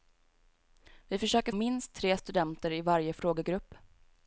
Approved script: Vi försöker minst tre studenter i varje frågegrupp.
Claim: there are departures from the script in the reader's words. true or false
false